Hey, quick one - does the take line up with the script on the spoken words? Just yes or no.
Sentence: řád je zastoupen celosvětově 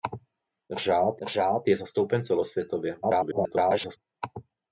no